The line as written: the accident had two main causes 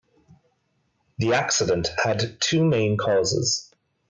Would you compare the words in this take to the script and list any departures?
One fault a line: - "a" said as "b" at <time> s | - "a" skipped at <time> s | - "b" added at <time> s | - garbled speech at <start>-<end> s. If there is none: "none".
none